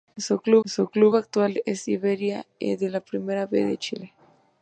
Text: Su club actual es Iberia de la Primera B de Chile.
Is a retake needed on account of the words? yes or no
yes